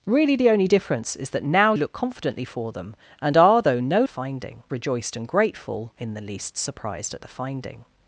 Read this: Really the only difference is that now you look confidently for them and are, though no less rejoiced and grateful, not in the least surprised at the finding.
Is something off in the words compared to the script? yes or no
yes